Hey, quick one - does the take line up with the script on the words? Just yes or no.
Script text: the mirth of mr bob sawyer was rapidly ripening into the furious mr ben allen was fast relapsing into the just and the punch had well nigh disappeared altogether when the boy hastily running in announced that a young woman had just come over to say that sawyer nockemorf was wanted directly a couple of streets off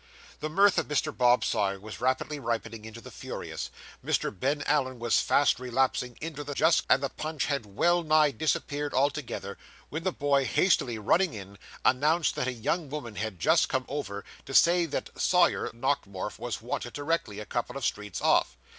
yes